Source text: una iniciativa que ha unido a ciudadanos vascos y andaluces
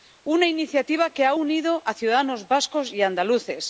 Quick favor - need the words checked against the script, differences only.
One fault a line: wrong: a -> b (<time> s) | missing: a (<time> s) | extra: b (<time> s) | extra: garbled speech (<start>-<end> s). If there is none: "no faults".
no faults